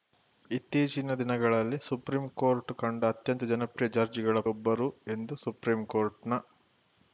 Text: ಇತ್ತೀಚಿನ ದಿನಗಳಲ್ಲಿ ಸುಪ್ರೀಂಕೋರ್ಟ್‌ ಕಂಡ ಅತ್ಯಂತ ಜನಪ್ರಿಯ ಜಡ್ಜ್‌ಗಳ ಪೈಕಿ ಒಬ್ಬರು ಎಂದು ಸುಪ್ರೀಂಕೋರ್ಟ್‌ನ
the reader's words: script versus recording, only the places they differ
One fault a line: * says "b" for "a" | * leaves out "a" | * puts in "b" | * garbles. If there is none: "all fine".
* leaves out "ಪೈಕಿ"